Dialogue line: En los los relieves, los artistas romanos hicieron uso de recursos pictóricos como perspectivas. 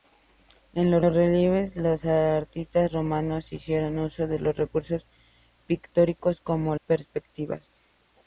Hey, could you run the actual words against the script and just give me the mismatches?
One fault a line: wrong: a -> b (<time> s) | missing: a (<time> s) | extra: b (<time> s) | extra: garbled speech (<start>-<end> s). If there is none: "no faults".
no faults